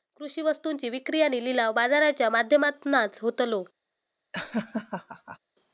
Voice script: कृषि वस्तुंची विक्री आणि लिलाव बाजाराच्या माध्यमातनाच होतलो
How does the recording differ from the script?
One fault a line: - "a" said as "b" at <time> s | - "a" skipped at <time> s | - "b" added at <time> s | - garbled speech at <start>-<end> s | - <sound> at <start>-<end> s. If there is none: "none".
- laugh at 4.3-5.4 s